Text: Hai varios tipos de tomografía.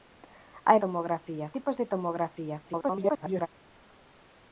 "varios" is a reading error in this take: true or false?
true